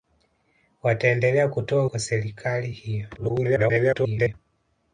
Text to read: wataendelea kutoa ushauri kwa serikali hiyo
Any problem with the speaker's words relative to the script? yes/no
yes